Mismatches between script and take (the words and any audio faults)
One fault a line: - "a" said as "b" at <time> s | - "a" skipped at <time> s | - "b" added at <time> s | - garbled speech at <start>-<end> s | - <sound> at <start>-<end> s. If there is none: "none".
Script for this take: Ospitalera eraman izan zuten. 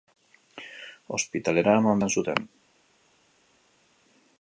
none